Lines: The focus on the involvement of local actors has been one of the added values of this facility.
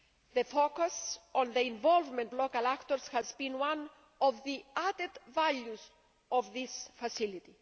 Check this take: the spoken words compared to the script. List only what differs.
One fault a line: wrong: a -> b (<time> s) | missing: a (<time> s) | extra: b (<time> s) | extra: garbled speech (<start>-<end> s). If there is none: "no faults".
missing: of (2.3 s)